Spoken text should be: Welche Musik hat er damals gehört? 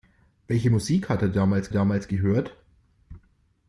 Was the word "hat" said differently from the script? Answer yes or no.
no